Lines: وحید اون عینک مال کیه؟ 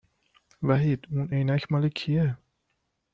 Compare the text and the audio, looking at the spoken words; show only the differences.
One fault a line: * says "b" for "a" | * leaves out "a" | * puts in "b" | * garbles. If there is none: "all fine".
all fine